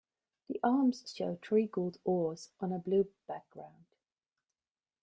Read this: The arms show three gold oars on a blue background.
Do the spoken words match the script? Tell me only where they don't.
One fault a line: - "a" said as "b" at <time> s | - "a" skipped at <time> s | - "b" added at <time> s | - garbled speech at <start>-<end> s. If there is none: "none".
none